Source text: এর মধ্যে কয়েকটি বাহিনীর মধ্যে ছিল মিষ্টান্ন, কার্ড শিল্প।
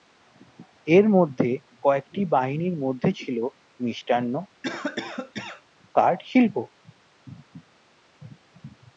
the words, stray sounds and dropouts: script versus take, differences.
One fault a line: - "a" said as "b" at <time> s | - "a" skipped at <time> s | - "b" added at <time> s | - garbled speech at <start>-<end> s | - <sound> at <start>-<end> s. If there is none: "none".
- cough at 4.6-5.6 s